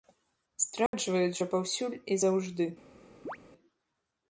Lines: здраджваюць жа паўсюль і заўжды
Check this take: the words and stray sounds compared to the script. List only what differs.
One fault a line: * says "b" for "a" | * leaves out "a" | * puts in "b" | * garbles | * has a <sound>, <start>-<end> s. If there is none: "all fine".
* has a dropout, 0.9-0.9 s
* has a chirp, 3.2-3.4 s